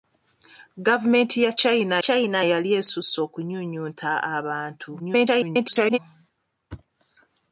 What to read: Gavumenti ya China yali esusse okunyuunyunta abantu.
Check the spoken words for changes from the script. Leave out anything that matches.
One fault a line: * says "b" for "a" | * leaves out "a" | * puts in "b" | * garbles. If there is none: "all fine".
* puts in "China"
* garbles